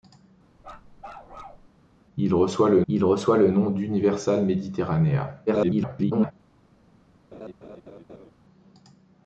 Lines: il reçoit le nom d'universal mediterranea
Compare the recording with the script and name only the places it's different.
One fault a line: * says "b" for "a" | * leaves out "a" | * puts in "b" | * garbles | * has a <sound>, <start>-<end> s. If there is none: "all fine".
* has a bark, 0.6-1.7 s
* puts in "il reçoit le"
* garbles
* has a laugh, 7.3-8.3 s